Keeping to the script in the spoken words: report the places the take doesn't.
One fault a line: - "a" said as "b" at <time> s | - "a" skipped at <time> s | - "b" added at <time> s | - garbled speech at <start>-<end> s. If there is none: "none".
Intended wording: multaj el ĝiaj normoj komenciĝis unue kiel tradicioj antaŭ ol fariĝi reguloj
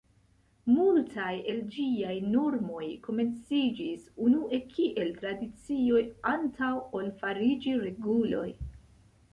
none